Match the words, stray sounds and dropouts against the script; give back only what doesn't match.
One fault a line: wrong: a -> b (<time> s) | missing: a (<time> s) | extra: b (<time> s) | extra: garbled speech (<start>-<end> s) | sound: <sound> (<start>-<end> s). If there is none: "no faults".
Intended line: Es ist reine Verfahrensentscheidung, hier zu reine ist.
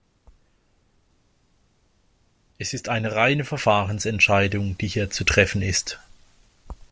extra: eine (2.9 s)
extra: die (4.8 s)
wrong: reine -> treffen (5.2 s)